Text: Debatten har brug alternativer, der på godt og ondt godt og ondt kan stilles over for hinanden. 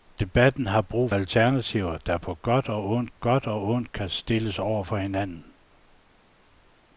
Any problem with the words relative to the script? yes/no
no